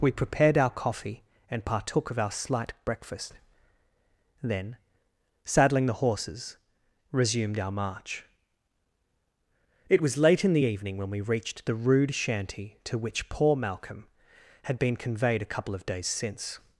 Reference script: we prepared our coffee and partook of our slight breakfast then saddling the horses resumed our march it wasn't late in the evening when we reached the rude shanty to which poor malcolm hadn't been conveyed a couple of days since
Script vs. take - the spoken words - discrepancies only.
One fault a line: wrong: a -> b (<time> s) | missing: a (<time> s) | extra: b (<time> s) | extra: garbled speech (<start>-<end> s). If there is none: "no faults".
wrong: wasn't -> was (10.0 s)
wrong: hadn't -> had (14.6 s)